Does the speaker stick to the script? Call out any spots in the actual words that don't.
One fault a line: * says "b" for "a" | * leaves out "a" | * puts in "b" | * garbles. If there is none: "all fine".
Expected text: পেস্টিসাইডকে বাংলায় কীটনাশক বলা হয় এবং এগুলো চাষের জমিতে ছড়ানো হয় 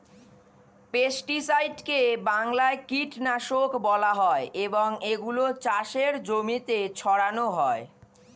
all fine